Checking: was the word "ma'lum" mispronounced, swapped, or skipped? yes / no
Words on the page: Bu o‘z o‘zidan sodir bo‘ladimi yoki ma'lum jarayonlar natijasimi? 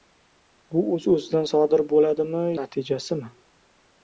yes